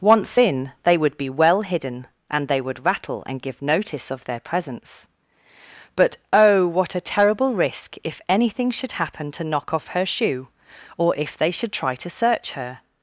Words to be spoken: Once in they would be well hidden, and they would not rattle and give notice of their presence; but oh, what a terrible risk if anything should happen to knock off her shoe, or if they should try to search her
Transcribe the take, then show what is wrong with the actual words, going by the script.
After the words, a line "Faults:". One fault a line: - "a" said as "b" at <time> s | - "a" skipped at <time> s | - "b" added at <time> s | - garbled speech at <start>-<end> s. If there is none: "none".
Once in they would be well hidden, and they would rattle and give notice of their presence; but oh, what a terrible risk if anything should happen to knock off her shoe, or if they should try to search her
Faults:
- "not" skipped at 2.8 s